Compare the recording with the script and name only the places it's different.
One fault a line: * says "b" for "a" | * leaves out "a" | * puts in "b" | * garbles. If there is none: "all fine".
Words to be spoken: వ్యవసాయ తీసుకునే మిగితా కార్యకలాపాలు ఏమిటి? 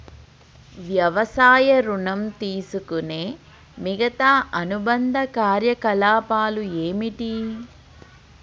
* puts in "ఋణం"
* puts in "అనుబంధ"